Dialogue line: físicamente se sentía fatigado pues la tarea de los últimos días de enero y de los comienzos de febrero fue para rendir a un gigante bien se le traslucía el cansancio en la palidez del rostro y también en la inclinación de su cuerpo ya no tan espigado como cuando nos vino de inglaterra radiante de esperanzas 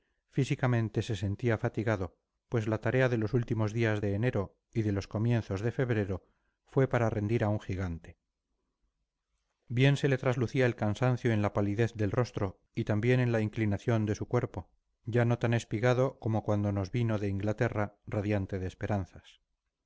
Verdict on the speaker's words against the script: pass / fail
pass